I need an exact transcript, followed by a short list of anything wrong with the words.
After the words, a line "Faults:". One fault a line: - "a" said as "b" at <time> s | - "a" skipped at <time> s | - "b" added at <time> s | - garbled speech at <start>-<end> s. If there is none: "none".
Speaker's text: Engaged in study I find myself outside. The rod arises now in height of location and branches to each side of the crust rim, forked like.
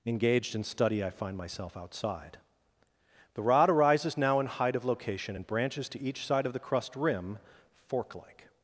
Engaged in study I find myself outside. The rod arises now in height of location and branches to each side of the crust rim, fork like.
Faults:
- "forked" said as "fork" at 7.7 s